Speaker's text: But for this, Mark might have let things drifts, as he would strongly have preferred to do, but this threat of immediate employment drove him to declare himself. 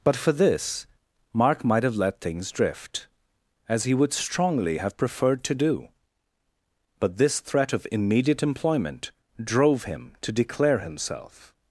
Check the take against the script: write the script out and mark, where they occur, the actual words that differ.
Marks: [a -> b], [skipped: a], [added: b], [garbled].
But for this, Mark might have let things [drifts, -> drift] as he would strongly have preferred to do, but this threat of immediate employment drove him to declare himself.